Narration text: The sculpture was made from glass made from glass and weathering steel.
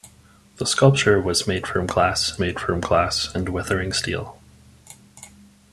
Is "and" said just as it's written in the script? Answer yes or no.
yes